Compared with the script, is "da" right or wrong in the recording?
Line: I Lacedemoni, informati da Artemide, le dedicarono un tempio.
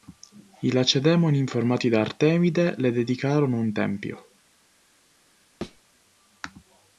right